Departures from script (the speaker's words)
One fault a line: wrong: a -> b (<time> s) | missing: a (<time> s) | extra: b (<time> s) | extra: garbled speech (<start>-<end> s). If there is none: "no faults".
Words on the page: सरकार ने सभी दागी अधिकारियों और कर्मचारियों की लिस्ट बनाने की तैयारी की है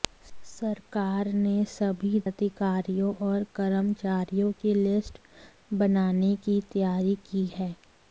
missing: दागी (2.2 s)